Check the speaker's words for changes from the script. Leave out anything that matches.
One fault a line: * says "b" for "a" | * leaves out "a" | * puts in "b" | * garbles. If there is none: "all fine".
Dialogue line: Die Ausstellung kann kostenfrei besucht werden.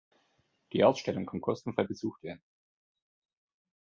all fine